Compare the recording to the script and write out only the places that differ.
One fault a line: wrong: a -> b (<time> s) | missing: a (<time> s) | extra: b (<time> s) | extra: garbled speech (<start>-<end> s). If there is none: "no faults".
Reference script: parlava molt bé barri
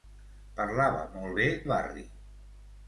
no faults